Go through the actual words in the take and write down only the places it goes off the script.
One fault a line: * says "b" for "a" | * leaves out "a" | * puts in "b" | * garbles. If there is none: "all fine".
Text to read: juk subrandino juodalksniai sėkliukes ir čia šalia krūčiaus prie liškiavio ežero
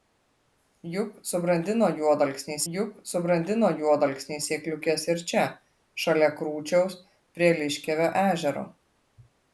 * puts in "juk subrandino juodalksniai"